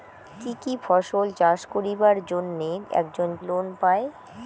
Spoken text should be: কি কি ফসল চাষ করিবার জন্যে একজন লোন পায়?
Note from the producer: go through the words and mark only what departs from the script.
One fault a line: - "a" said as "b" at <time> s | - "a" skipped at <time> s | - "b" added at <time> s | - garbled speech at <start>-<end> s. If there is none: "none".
none